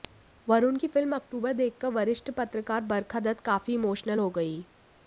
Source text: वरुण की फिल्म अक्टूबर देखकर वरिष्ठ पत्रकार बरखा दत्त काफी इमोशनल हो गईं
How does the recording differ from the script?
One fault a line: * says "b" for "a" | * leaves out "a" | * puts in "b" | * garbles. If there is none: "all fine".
all fine